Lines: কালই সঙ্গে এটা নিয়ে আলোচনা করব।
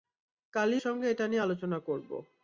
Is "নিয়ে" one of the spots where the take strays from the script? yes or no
no